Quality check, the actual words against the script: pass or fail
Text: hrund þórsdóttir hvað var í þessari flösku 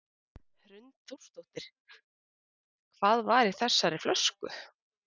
pass